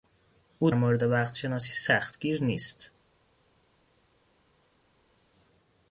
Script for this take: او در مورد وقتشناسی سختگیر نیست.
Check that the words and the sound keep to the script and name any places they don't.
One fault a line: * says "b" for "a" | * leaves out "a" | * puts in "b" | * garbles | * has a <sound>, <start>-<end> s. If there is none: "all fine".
* leaves out "در"